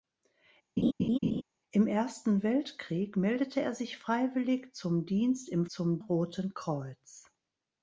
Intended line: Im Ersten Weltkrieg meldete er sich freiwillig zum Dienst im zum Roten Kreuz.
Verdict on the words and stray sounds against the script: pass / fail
fail